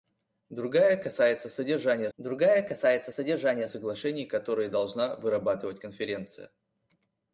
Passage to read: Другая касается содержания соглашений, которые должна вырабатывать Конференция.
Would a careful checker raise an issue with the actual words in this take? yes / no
yes